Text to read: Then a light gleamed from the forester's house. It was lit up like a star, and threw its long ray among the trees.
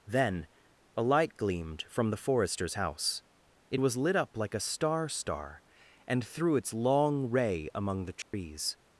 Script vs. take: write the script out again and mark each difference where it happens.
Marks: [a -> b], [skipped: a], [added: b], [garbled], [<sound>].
Then a light gleamed from the forester's house. It was lit up like a star, [added: star] and threw its long ray among the trees. [dropout]